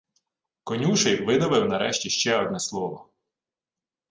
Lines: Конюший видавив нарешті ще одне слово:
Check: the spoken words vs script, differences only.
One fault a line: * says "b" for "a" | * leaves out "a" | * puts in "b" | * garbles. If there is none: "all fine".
all fine